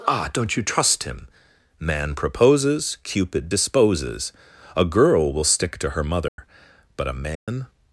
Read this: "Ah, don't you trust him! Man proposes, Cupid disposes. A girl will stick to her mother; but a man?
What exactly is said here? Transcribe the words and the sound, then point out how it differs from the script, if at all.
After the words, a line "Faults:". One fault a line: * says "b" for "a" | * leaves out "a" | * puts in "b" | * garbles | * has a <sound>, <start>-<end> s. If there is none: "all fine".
"Ah, don't you trust him! Man proposes, Cupid disposes. A girl will stick to her mother; but a man?
Faults:
* has a dropout, 6.3-6.4 s
* has a dropout, 7.4-7.5 s